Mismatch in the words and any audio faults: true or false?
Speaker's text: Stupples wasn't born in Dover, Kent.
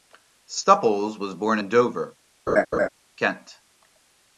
true